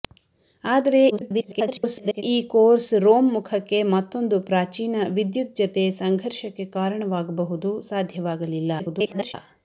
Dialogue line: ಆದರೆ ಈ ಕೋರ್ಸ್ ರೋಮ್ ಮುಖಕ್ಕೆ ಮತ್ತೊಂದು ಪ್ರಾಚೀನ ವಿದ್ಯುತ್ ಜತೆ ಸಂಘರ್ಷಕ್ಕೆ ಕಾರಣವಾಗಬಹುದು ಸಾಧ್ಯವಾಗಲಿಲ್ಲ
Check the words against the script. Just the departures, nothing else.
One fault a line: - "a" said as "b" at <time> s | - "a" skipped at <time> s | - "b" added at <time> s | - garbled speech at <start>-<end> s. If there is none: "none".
- garbled speech at 1.1-2.2 s
- garbled speech at 8.8-9.3 s